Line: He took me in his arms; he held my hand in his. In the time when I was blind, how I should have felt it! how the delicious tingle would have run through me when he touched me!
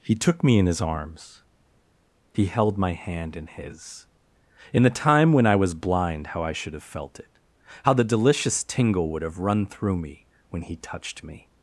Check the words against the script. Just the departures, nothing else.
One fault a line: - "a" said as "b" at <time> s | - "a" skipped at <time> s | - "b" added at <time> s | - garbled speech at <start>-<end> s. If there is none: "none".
none